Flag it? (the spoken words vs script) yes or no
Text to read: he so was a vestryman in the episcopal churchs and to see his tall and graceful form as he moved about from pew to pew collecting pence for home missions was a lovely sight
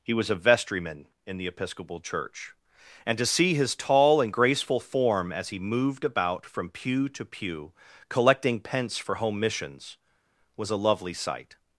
yes